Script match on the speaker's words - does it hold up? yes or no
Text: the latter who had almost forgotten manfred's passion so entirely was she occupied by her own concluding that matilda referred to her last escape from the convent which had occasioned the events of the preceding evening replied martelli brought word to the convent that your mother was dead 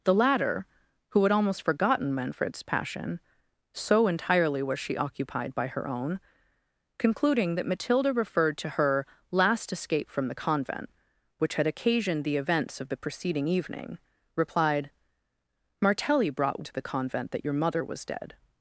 no